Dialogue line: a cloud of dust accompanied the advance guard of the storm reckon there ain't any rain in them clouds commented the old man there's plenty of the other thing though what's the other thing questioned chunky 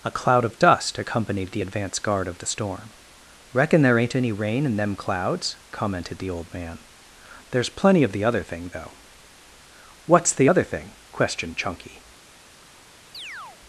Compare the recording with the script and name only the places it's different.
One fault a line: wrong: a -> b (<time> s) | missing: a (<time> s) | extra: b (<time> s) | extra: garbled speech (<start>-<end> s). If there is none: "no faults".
no faults